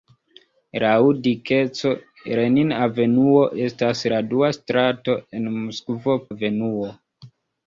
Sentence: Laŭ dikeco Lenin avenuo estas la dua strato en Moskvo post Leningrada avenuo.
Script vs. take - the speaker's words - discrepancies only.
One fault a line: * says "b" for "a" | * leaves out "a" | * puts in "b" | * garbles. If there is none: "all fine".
* leaves out "post Leningrada"